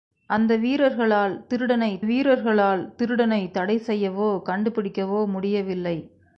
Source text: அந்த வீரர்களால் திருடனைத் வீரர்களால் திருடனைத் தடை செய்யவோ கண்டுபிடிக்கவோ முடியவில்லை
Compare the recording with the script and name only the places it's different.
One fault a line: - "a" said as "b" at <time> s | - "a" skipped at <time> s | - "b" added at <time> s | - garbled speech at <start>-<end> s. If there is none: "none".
none